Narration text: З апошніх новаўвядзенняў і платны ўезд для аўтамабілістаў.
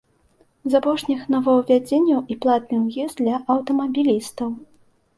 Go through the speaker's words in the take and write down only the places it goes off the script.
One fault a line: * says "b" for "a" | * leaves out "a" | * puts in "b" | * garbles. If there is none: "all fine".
all fine